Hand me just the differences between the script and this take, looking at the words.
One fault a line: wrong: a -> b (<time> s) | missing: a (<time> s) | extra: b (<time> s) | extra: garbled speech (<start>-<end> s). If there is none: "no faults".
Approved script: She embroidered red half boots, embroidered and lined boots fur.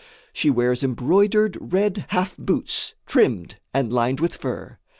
extra: wears (0.5 s)
wrong: embroidered -> trimmed (3.1 s)
wrong: boots -> with (4.2 s)